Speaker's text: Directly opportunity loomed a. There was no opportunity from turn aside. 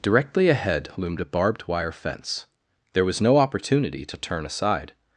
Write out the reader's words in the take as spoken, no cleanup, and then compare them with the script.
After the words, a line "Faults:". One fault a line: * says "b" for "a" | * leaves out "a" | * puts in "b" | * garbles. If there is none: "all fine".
Directly ahead loomed a barbed wire fence. There was no opportunity to turn aside.
Faults:
* says "ahead" for "opportunity"
* puts in "barbed wire fence"
* says "to" for "from"